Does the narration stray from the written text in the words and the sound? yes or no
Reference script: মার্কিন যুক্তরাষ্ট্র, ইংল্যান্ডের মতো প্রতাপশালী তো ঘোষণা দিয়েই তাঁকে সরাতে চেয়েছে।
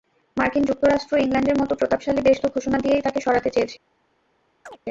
yes